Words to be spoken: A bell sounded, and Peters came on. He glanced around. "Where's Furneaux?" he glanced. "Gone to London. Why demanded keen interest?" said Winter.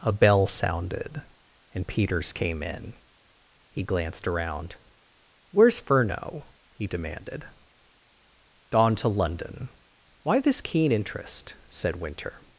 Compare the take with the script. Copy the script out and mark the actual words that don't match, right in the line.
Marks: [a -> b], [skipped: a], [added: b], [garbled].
A bell sounded, and Peters came [on. -> in] He glanced around. "Where's Furneaux?" he [glanced. -> demanded] "Gone to London. Why [demanded -> this] keen interest?" said Winter.